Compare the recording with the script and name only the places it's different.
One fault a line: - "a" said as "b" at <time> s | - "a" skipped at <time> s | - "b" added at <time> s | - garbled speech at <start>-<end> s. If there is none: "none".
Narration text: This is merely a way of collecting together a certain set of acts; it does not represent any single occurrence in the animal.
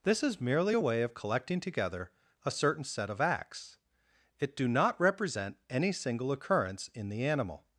- "does" said as "do" at 4.6 s